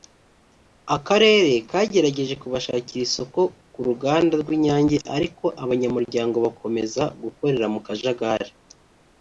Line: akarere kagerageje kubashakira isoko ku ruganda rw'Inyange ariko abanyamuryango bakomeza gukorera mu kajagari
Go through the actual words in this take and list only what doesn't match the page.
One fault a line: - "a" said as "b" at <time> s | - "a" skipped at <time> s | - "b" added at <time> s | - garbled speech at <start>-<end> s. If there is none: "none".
none